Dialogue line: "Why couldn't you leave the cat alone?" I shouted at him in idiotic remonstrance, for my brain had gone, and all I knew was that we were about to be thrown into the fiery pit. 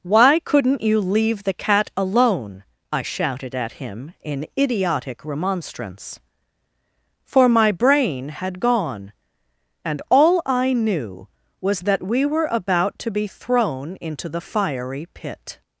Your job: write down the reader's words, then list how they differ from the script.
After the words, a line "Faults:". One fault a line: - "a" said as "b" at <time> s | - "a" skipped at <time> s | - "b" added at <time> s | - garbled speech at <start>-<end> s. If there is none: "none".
"Why couldn't you leave the cat alone?" I shouted at him in idiotic remonstrance, for my brain had gone, and all I knew was that we were about to be thrown into the fiery pit.
Faults:
none